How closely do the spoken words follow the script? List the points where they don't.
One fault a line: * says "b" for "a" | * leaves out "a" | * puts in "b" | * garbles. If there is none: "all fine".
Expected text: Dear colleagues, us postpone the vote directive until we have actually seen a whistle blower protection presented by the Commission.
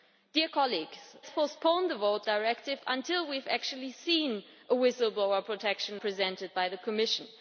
all fine